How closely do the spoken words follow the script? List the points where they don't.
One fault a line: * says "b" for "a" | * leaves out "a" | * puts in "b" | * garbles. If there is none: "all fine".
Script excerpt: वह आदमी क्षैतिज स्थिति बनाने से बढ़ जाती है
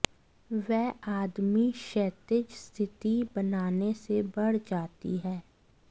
all fine